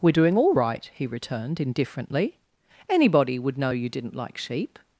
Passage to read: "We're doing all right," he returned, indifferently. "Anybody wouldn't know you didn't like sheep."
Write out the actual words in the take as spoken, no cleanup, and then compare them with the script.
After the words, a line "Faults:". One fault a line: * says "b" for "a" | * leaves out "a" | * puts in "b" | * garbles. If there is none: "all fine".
"We're doing all right," he returned, indifferently. "Anybody would know you didn't like sheep."
Faults:
* says "would" for "wouldn't"